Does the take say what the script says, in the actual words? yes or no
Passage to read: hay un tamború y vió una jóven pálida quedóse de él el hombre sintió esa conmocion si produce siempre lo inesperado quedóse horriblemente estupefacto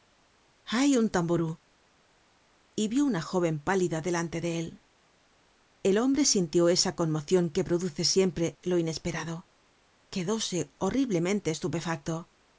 no